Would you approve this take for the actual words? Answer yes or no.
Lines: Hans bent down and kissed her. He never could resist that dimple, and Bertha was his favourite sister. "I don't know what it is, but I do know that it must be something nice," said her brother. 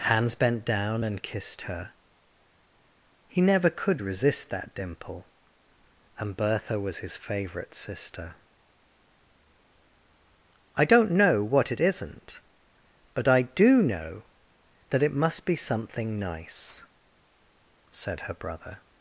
no